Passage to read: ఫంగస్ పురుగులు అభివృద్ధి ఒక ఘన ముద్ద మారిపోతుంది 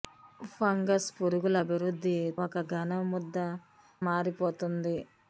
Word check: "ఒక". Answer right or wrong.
right